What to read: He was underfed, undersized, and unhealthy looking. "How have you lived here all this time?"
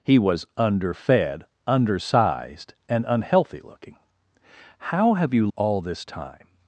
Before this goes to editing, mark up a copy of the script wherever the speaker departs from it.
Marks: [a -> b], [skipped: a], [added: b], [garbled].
He was underfed, undersized, and unhealthy looking. "How have you [skipped: lived here] all this time?"